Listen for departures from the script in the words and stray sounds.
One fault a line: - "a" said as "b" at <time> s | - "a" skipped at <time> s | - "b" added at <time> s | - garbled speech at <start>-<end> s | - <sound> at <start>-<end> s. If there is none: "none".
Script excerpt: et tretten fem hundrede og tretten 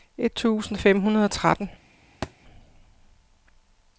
- "tretten" said as "tusind" at 0.3 s
- thud at 2.2-2.3 s